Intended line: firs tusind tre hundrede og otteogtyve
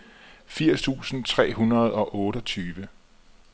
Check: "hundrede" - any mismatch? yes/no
no